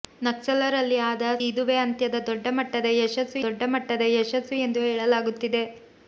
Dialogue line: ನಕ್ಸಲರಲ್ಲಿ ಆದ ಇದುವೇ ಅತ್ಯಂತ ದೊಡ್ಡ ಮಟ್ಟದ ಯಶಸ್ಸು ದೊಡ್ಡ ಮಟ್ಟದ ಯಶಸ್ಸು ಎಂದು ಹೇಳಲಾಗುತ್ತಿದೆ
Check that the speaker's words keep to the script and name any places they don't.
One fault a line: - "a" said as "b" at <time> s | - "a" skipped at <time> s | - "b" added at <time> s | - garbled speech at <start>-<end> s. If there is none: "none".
none